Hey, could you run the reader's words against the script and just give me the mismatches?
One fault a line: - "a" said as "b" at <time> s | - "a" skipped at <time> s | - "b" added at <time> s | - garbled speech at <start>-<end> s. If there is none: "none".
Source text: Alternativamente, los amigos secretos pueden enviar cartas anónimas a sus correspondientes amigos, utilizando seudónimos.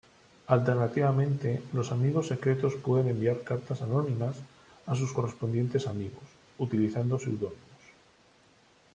none